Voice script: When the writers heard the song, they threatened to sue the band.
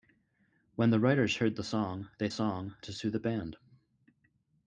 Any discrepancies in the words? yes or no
yes